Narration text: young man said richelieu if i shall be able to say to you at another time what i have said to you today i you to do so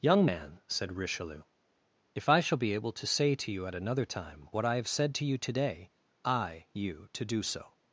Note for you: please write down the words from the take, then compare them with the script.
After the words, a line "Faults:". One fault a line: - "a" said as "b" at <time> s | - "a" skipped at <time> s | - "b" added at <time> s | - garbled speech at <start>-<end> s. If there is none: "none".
young man said richelieu if i shall be able to say to you at another time what i have said to you today i you to do so
Faults:
none